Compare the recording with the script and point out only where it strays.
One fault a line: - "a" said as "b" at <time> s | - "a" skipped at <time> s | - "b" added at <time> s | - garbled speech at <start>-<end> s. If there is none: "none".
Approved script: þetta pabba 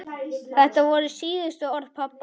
- "voru síðustu orð" added at 0.9 s